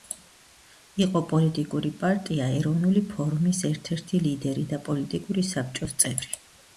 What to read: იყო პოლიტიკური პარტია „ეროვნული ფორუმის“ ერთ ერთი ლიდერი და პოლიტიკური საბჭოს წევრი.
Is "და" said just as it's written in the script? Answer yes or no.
yes